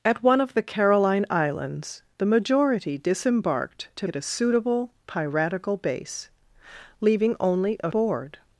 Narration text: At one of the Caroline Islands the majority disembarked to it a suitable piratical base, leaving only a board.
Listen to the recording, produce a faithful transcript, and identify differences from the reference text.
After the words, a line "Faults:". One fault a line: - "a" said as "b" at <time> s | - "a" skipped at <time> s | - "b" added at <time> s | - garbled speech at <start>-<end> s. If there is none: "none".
At one of the Caroline Islands the majority disembarked to it a suitable piratical base, leaving only a board.
Faults:
none